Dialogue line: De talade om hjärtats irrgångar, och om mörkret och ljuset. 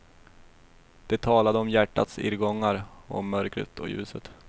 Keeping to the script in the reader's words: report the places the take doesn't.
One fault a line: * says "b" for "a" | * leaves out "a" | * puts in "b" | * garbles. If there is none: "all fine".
all fine